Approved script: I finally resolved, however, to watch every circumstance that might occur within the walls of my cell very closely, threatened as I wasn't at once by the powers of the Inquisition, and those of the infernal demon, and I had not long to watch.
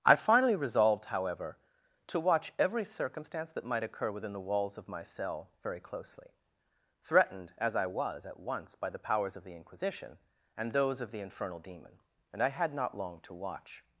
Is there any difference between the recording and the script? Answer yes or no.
yes